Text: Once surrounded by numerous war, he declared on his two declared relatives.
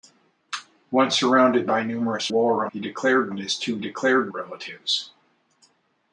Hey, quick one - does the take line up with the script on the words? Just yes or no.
yes